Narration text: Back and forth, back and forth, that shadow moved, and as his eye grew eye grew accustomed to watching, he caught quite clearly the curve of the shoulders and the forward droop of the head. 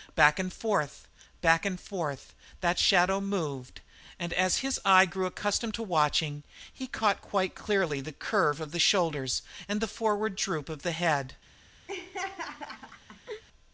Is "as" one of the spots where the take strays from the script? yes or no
no